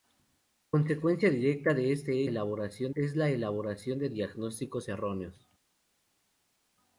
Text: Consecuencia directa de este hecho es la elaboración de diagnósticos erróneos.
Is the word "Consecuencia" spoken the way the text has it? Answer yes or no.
yes